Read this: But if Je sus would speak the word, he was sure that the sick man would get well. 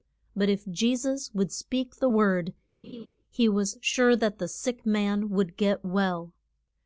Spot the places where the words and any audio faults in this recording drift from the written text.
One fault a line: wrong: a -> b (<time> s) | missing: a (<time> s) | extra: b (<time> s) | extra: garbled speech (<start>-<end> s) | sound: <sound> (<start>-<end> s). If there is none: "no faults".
sound: laugh (2.8-3.1 s)